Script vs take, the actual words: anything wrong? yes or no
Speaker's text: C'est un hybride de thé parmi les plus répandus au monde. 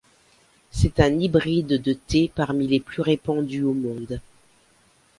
no